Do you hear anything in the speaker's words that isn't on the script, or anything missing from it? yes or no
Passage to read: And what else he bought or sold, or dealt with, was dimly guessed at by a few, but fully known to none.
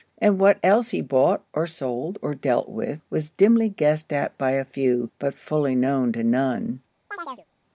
no